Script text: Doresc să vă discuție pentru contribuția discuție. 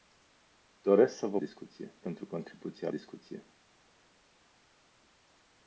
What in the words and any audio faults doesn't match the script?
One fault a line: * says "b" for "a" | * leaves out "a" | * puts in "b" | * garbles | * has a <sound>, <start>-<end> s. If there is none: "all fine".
all fine